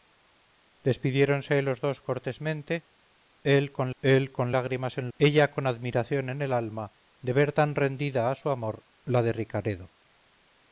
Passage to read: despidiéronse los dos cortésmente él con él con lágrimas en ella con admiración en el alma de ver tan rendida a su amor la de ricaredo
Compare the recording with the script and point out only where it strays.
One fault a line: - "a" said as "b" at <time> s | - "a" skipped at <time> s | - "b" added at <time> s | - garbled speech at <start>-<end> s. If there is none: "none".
none